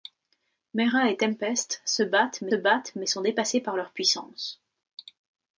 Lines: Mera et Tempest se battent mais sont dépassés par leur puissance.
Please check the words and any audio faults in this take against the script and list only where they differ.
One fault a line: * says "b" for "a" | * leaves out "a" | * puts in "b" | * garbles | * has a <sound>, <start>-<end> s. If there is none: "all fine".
* puts in "battent mais"